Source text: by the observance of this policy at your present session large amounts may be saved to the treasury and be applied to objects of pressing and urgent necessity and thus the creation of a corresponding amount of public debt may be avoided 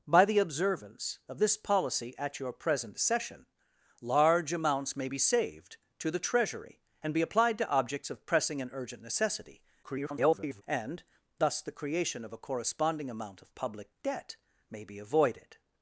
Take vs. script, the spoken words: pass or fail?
fail